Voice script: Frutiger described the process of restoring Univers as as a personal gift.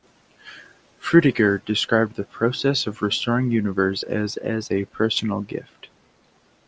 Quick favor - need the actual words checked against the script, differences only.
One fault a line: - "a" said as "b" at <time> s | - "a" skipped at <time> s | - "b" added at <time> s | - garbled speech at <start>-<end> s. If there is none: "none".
none